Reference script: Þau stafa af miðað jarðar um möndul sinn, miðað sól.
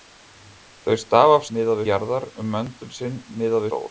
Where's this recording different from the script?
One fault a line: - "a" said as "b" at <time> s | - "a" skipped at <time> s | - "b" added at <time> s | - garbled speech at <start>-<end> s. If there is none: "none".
none